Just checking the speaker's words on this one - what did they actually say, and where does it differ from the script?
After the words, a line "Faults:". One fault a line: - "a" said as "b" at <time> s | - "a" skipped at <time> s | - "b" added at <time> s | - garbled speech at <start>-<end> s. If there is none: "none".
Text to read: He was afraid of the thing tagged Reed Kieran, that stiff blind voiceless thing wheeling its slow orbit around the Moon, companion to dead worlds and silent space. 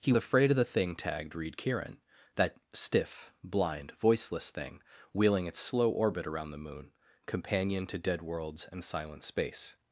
He afraid of the thing tagged Reed Kieran, that stiff blind voiceless thing wheeling its slow orbit around the Moon, companion to dead worlds and silent space.
Faults:
- "was" skipped at 0.1 s